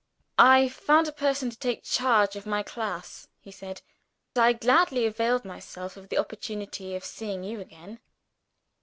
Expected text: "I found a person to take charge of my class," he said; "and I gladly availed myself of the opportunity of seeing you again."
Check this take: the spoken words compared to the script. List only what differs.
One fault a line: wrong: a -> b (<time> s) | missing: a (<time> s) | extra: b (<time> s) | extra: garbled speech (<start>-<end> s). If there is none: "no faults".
missing: and (3.8 s)